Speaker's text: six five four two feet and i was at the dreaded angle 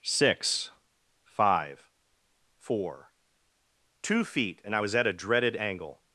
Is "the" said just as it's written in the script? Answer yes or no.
no